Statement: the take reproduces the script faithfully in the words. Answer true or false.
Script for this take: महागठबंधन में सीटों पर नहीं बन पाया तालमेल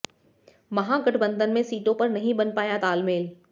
true